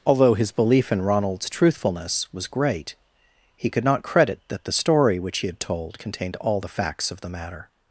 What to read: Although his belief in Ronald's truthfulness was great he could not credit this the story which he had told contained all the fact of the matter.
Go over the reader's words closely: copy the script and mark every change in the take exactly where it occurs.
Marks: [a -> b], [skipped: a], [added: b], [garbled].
Although his belief in Ronald's truthfulness was great he could not credit [this -> that] the story which he had told contained all the [fact -> facts] of the matter.